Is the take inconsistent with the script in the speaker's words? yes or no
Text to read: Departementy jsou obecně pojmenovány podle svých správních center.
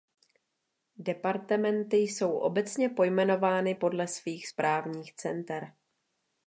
no